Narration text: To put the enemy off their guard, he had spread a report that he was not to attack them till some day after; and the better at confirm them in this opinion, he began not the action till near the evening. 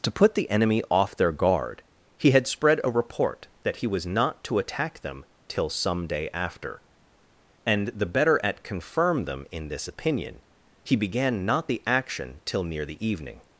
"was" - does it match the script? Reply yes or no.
yes